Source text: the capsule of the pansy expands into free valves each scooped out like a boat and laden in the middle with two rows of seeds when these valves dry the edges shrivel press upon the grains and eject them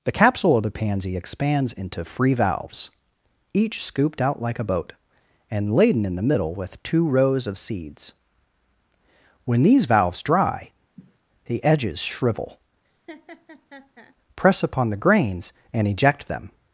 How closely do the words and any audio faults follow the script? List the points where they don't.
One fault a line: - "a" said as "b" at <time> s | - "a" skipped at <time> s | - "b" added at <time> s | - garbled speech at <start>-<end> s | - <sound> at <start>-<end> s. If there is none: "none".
- sniff at 11.0-11.2 s
- laugh at 12.8-14.1 s